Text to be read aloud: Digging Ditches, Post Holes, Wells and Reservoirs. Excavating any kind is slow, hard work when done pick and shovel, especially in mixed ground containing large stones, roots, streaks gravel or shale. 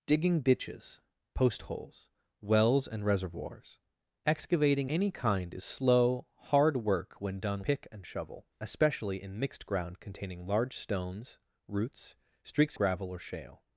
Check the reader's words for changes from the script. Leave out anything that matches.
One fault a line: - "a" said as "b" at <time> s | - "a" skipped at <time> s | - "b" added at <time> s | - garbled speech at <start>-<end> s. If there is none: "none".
none